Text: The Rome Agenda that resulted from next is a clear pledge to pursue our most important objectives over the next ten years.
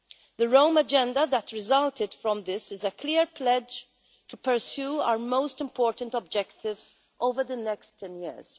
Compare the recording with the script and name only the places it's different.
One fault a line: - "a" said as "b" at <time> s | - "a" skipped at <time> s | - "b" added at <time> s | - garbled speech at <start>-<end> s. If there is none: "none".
- "next" said as "this" at 2.5 s